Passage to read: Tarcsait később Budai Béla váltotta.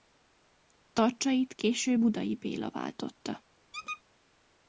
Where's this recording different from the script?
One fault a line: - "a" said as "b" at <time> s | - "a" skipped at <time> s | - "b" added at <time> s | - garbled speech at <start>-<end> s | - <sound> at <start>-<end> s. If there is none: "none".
- squeak at 3.7-4.0 s